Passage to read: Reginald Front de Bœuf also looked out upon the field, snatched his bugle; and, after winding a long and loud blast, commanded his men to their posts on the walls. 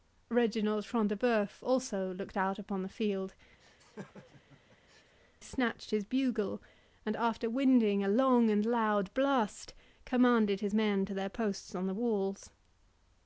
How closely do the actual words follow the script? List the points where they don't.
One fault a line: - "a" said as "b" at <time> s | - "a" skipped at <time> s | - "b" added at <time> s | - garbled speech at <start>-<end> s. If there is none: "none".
none